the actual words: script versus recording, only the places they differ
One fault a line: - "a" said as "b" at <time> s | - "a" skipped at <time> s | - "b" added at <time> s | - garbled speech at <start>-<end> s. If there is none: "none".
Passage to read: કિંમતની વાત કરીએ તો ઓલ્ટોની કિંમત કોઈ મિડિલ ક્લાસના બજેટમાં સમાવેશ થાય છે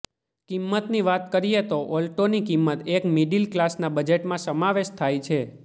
- "કોઈ" said as "એક" at 2.9 s